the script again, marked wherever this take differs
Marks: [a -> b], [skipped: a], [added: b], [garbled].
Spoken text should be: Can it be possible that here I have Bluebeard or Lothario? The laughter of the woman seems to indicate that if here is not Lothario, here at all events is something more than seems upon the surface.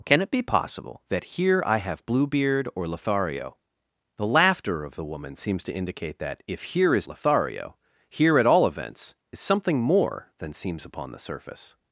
Can it be possible that here I have Bluebeard or Lothario? The laughter of the woman seems to indicate that if here is [skipped: not] Lothario, here at all events is something more than seems upon the surface.